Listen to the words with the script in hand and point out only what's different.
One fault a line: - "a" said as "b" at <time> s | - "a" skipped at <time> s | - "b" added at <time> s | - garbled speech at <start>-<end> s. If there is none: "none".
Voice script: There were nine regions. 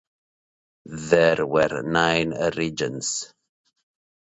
none